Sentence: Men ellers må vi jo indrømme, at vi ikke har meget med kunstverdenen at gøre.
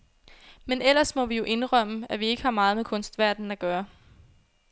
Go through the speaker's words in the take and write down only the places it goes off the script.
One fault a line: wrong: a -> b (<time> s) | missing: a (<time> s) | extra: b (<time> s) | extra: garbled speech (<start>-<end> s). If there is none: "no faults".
no faults